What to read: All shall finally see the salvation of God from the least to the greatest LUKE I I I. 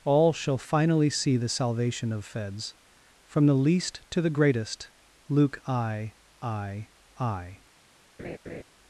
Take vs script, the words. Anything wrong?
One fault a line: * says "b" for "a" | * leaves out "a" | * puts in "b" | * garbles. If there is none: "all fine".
* says "Feds" for "God"